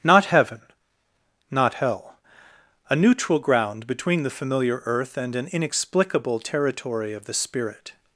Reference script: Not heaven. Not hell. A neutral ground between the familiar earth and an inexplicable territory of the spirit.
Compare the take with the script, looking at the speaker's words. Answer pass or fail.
pass